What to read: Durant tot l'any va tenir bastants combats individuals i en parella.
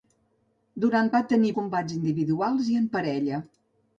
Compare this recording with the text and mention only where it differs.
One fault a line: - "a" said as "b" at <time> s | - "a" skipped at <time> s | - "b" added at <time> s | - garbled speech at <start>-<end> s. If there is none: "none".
- "tot l'any" skipped at 1.1 s
- "bastants" skipped at 1.5 s